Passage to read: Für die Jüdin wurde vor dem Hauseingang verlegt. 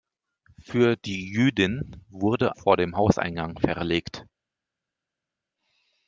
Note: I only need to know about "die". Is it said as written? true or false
true